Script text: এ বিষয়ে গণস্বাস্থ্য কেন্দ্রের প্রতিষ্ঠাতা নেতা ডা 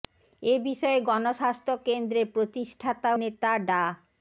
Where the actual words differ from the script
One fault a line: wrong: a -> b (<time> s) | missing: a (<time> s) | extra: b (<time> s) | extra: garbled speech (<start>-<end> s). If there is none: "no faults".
no faults